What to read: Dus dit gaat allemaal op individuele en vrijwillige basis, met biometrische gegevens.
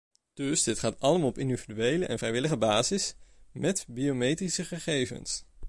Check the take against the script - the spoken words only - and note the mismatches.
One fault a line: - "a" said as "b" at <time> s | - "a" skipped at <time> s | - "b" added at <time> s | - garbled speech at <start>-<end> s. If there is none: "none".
none